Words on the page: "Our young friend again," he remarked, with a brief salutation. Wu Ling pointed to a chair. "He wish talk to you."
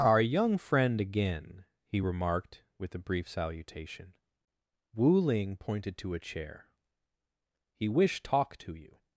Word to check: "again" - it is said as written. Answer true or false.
true